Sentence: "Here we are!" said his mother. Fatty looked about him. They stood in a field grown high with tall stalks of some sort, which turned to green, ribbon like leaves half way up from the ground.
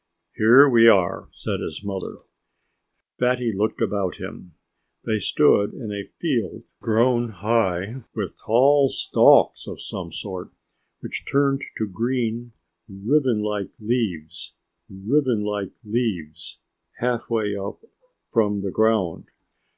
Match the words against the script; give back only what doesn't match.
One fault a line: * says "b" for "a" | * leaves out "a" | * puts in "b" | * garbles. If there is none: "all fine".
* puts in "ribbon like leaves"